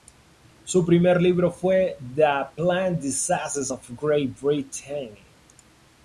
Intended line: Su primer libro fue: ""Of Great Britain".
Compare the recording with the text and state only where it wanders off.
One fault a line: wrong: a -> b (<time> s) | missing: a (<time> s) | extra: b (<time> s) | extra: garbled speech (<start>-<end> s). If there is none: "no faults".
extra: The Plant Diseases (2.0 s)